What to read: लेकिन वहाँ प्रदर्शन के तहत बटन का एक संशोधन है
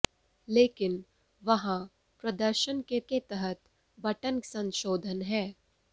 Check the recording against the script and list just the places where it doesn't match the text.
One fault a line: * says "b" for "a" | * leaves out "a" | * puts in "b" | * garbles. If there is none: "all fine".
* puts in "के"
* leaves out "का एक"